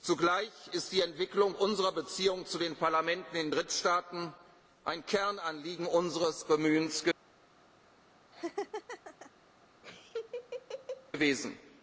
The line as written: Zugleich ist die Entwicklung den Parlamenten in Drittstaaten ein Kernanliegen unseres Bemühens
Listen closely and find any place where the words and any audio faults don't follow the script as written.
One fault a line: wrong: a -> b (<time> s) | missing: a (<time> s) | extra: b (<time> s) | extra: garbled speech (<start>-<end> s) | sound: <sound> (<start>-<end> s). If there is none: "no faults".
extra: unserer Beziehungen zu (1.5 s)
sound: laugh (8.3-9.3 s)
sound: laugh (9.8-11.1 s)